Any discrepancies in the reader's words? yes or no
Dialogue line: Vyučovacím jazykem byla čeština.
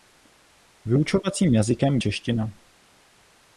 yes